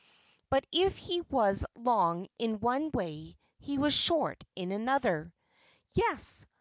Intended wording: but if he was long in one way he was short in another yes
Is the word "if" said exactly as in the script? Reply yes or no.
yes